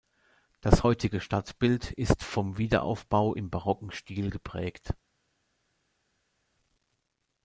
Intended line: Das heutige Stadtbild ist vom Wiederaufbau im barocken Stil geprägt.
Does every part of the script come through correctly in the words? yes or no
yes